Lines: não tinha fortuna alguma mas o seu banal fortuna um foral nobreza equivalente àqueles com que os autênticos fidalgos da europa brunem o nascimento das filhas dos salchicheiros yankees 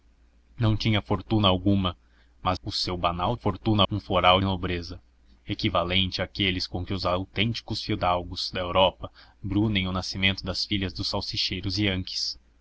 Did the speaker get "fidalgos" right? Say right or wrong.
right